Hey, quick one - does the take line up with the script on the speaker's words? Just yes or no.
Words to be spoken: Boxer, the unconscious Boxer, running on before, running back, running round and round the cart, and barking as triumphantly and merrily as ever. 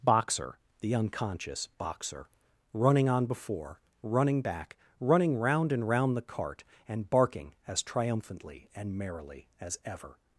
yes